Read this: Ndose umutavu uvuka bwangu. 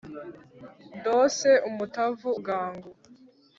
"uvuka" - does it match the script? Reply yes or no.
no